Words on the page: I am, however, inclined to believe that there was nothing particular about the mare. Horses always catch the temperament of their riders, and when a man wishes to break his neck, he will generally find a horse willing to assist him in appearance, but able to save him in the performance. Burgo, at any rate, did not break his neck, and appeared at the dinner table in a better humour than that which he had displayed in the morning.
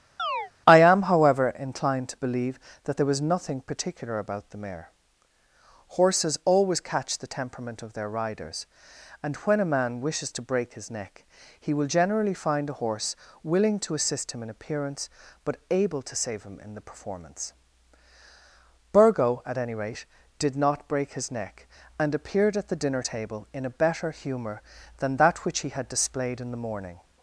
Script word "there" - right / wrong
right